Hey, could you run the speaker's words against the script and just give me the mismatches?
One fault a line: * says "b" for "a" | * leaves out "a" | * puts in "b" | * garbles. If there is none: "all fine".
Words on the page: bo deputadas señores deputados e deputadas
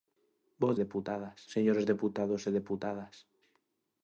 all fine